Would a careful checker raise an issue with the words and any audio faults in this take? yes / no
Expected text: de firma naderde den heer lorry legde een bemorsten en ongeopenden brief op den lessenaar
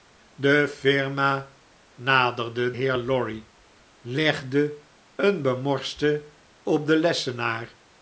yes